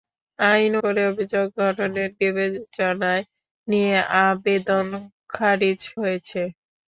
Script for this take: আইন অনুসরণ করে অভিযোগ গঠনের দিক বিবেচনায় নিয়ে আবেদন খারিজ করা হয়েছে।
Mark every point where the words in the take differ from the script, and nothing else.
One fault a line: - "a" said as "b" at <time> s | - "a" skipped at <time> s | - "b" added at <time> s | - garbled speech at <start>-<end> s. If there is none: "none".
- "অনুসরণ" skipped at 0.7 s
- "দিক" skipped at 2.1 s
- "করা" skipped at 5.8 s